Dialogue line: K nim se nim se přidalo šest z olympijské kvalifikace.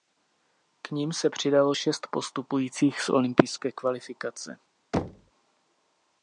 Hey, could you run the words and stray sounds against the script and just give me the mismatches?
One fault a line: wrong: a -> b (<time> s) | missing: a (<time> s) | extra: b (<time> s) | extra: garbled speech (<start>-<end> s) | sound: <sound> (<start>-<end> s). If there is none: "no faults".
missing: nim se (1.3 s)
extra: postupujících (2.1 s)
sound: thud (4.9-5.3 s)